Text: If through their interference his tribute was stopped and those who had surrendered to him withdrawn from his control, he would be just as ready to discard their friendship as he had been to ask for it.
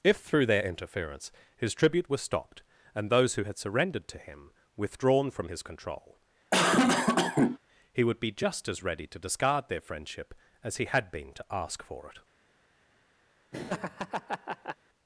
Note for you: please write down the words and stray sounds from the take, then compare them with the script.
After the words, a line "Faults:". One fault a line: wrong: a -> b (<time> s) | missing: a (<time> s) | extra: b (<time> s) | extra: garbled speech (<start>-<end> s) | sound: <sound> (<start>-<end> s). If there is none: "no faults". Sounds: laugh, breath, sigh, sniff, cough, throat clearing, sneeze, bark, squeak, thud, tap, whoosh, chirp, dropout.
If through their interference his tribute was stopped and those who had surrendered to him withdrawn from his control, he would be just as ready to discard their friendship as he had been to ask for it.
Faults:
sound: cough (6.5-7.6 s)
sound: laugh (13.5-14.8 s)